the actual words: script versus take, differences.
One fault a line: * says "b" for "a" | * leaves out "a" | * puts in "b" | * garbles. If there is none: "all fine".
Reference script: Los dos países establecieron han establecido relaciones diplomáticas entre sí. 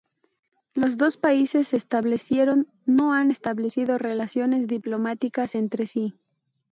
* puts in "no"